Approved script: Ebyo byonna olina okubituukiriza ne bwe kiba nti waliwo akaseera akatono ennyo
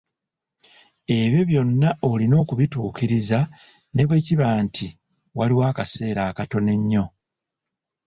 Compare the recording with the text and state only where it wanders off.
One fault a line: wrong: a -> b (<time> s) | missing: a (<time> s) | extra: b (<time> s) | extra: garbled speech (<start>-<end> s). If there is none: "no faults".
no faults